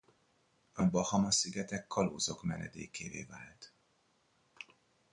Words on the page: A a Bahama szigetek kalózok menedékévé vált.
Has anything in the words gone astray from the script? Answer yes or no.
no